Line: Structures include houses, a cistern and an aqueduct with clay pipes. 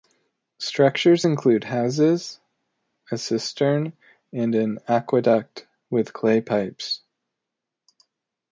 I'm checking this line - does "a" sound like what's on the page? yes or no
yes